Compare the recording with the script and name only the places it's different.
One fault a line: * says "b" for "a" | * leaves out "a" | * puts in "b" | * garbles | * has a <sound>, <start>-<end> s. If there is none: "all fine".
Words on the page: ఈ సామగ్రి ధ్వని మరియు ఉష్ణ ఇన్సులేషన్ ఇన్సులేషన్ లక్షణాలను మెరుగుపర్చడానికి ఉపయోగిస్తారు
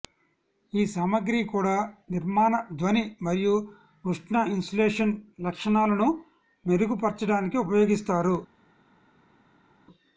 * puts in "కూడా నిర్మాణ"
* leaves out "ఇన్సులేషన్"